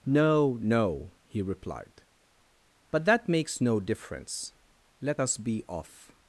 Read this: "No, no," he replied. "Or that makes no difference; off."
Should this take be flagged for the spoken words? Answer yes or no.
yes